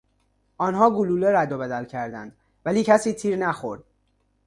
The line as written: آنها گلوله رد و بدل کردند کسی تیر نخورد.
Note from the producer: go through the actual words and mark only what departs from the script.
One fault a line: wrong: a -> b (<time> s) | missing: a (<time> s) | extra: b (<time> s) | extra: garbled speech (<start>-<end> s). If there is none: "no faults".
extra: ولی (2.7 s)